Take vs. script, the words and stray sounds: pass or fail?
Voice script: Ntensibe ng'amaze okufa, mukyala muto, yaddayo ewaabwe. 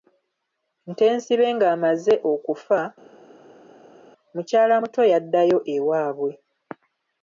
pass